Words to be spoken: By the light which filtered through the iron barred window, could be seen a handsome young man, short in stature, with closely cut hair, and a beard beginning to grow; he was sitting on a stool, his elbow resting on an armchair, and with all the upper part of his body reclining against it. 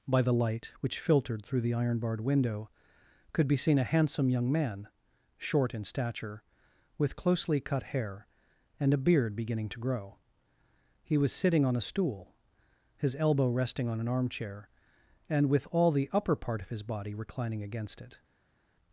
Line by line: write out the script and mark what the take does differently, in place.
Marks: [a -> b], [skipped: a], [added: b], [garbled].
By the light which filtered through the iron barred window, could be seen a handsome young man, short in stature, with closely cut hair, and a beard beginning to grow; he was sitting on a stool, his elbow resting on an armchair, and with all the upper part of his body reclining against it.